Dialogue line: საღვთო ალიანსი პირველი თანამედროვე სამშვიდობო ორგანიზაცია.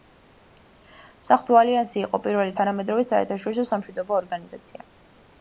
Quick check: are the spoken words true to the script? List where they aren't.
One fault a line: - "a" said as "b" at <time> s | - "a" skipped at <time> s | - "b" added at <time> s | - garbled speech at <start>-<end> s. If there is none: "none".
- "იყო" added at 2.0 s
- "საერთაშორისო" added at 3.1 s